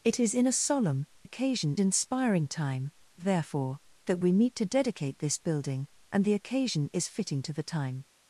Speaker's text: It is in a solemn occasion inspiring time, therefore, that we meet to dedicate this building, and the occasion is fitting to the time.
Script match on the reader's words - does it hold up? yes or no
yes